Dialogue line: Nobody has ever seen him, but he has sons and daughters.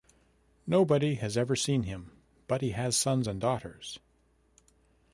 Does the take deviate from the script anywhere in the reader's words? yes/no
no